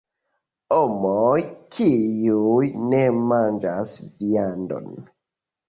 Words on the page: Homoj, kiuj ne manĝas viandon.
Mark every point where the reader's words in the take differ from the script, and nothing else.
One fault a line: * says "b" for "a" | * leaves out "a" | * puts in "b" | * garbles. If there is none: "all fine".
all fine